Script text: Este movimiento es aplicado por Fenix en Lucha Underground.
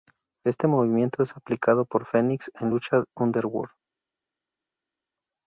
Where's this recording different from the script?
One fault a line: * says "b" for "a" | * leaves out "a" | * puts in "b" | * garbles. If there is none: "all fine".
all fine